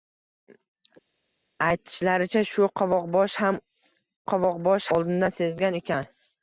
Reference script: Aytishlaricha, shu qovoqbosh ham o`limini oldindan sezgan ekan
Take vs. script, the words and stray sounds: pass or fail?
fail